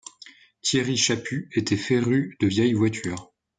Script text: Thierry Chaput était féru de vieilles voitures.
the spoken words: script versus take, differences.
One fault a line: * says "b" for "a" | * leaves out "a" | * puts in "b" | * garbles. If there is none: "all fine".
all fine